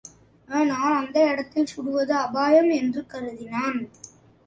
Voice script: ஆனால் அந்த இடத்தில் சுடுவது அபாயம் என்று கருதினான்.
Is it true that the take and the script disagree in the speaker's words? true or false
false